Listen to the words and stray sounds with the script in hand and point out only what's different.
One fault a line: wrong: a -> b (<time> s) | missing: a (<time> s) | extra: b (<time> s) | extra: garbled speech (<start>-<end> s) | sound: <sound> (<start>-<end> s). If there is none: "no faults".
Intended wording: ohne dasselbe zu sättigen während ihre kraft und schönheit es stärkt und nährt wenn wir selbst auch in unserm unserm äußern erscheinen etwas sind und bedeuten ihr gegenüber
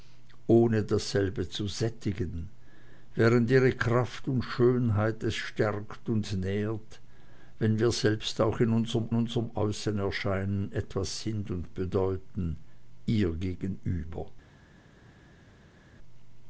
no faults